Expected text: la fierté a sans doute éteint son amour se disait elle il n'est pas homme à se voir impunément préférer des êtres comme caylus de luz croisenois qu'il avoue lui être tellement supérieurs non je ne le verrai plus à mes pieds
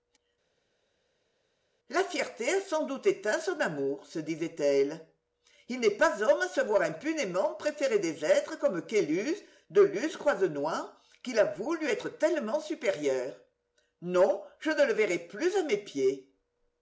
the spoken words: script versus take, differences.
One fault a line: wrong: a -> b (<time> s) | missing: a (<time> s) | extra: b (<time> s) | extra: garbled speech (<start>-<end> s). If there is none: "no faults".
no faults